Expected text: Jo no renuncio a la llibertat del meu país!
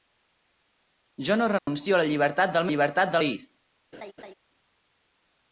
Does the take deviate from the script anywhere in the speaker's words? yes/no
yes